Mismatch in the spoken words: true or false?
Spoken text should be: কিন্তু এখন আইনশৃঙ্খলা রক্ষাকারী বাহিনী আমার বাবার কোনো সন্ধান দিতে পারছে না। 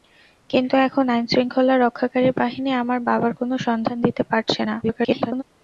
true